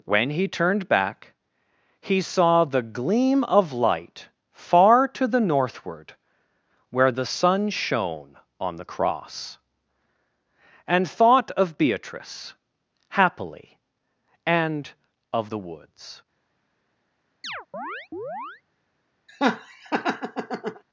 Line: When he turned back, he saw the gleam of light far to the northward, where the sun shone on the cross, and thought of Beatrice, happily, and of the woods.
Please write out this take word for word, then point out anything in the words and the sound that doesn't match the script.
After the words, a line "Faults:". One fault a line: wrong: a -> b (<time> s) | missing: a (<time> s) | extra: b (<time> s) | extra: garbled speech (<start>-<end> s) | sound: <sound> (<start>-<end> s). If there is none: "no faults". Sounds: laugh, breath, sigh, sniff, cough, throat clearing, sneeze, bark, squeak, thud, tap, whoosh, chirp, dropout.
When he turned back, he saw the gleam of light far to the northward, where the sun shone on the cross, and thought of Beatrice, happily, and of the woods.
Faults:
sound: chirp (17.4-18.6 s)
sound: laugh (19.3-20.8 s)